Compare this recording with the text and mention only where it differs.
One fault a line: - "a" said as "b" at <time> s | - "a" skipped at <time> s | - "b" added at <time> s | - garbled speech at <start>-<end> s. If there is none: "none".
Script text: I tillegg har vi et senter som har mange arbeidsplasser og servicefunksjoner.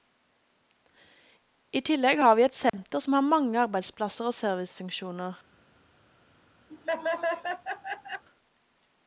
none